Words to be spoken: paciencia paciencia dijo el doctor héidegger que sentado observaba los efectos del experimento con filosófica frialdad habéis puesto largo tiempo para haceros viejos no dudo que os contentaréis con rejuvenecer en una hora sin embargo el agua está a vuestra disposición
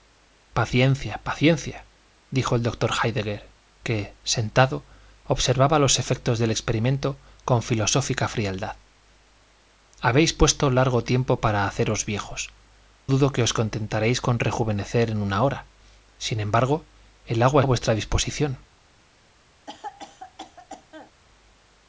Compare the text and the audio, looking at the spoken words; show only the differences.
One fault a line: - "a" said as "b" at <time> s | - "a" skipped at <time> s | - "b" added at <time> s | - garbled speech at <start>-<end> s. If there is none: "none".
- "no" skipped at 12.5 s
- "está" skipped at 17.6 s